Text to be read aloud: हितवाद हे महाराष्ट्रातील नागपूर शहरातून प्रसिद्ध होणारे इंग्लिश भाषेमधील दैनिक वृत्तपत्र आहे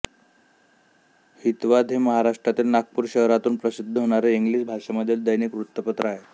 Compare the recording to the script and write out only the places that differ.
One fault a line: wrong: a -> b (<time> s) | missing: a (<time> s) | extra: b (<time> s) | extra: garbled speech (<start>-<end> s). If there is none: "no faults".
no faults